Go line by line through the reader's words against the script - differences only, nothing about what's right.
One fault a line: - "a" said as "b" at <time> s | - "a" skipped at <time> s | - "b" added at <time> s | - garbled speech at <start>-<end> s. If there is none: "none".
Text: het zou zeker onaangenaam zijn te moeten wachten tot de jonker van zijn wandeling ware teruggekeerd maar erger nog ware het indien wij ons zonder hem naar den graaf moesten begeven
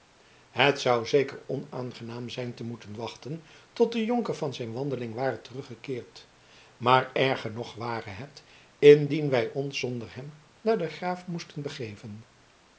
none